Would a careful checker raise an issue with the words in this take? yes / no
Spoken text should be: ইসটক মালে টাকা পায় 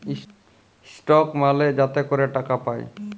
yes